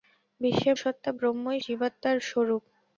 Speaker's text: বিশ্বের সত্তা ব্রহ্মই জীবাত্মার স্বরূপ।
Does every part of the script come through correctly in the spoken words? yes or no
yes